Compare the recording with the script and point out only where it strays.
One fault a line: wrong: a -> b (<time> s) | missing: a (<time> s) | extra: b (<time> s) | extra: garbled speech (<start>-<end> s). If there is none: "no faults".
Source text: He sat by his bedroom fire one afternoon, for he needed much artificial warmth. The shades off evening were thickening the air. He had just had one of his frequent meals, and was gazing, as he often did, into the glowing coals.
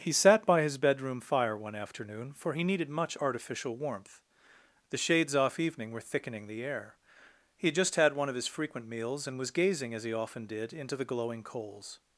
no faults